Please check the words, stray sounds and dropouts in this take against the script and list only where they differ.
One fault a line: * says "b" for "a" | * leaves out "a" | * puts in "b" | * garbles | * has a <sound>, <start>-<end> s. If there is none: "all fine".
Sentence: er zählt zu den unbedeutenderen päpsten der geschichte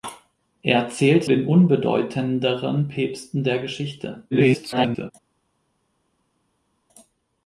* leaves out "zu"
* garbles